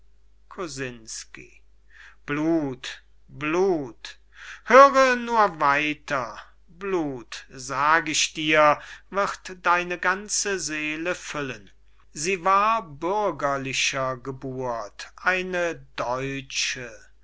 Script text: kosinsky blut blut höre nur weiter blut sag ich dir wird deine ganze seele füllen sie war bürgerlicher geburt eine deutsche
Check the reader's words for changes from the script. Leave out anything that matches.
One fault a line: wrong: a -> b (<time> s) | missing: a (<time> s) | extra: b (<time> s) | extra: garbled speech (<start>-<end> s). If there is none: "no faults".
no faults